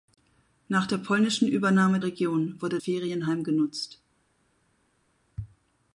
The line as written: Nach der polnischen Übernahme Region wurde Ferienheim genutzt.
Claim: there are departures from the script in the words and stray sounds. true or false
false